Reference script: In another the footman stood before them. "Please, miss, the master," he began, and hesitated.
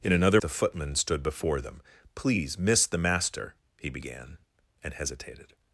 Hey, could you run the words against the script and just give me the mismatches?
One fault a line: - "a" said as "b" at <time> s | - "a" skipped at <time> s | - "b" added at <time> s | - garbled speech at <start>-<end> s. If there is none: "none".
none